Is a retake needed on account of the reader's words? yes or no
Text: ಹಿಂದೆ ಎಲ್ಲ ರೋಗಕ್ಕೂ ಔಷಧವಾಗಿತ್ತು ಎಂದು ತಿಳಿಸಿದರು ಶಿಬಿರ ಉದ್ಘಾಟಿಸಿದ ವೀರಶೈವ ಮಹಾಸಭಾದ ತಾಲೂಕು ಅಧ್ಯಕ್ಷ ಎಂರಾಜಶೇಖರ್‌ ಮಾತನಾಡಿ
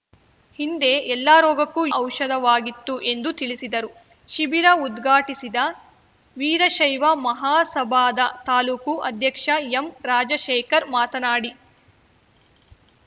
no